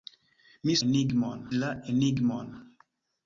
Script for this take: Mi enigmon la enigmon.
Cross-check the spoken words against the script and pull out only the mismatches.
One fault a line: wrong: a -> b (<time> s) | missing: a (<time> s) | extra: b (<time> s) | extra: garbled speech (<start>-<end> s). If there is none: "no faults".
no faults